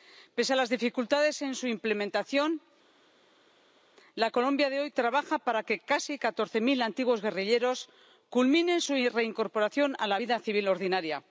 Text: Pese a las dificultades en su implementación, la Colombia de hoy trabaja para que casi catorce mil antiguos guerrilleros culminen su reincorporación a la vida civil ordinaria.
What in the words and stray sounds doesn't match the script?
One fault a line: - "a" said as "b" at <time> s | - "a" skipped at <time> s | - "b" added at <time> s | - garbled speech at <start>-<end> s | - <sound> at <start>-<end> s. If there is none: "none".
none